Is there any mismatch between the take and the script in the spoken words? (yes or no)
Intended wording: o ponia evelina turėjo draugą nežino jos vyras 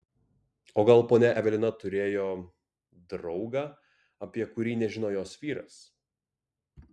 yes